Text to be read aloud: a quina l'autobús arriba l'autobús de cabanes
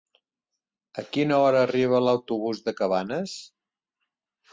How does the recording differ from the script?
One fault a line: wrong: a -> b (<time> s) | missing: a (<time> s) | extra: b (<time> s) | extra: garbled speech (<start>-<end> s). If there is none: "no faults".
wrong: l'autobús -> hora (1.4 s)